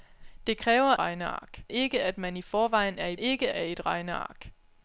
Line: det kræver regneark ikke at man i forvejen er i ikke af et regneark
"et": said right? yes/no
yes